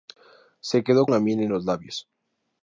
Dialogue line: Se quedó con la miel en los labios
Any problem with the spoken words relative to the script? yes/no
yes